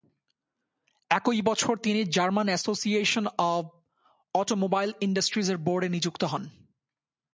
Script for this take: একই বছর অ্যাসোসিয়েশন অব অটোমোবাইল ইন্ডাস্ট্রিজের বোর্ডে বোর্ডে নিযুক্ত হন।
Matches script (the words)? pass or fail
fail